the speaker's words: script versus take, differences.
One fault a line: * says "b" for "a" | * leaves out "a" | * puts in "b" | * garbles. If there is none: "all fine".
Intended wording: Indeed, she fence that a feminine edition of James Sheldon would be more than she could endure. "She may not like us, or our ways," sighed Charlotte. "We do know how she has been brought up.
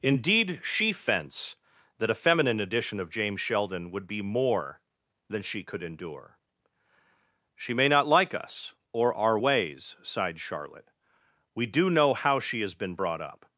all fine